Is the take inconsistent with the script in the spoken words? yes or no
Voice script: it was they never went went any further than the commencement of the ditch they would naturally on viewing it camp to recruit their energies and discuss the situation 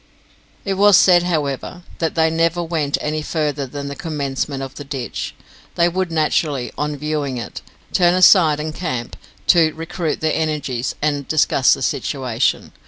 yes